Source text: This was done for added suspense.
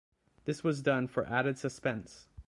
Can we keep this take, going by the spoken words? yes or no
yes